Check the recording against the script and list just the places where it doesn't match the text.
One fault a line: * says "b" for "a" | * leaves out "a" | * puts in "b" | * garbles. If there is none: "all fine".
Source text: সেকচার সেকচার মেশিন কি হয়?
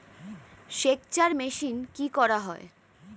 * leaves out "সেকচার"
* puts in "করা"